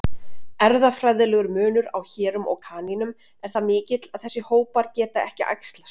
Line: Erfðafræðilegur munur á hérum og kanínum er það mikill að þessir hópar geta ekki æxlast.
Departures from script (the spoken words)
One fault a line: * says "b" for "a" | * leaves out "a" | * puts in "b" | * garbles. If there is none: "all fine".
all fine